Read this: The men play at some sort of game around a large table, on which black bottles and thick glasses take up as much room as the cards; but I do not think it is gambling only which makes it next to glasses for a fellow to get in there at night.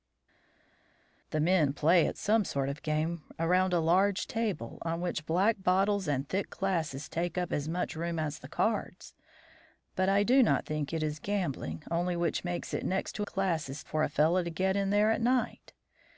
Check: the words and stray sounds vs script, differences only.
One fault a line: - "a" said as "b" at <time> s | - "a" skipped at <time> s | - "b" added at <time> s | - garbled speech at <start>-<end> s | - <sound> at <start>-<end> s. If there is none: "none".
none